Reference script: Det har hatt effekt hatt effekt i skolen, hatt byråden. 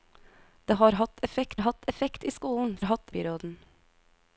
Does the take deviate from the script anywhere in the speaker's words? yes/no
no